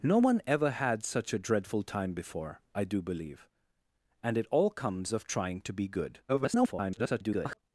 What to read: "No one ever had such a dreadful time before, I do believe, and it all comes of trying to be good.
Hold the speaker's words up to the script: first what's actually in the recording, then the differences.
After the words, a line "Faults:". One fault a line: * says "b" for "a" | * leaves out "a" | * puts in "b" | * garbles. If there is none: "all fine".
"No one ever had such a dreadful time before, I do believe, and it all comes of trying to be good. [garbled]
Faults:
* garbles